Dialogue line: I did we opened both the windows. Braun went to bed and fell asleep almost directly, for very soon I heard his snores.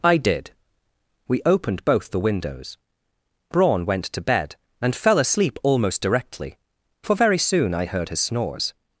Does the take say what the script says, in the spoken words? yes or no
yes